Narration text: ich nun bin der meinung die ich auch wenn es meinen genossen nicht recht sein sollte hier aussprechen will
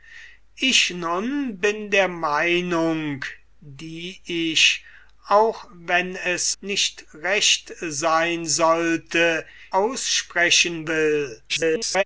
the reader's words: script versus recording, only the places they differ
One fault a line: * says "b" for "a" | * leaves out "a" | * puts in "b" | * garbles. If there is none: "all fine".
* leaves out "meinen genossen"
* leaves out "hier"
* garbles